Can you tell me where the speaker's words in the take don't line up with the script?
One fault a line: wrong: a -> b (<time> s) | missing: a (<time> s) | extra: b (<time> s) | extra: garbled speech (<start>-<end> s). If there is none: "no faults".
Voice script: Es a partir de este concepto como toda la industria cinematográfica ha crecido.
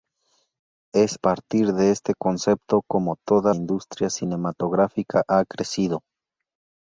missing: a (1.2 s)
missing: la (3.5 s)